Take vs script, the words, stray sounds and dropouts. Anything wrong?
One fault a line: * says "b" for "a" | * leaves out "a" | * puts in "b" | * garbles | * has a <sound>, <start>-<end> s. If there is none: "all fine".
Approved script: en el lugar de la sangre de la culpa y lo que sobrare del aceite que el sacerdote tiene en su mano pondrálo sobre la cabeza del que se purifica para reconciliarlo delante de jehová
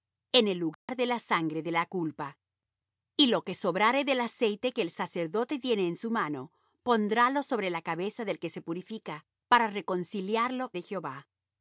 * has a dropout, 0.7-0.9 s
* leaves out "delante"